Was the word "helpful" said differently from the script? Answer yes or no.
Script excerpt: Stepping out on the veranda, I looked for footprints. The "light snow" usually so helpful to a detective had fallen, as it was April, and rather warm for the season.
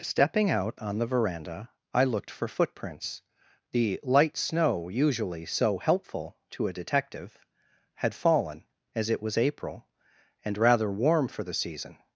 no